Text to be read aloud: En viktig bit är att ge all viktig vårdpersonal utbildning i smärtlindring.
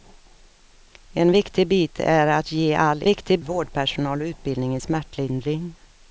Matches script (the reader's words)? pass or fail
pass